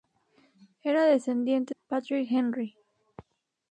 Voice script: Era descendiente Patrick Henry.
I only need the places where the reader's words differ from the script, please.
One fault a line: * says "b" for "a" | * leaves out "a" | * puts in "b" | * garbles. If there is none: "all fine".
all fine